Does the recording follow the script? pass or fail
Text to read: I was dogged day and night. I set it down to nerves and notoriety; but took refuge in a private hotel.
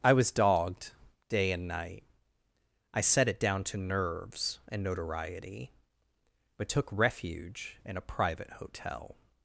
pass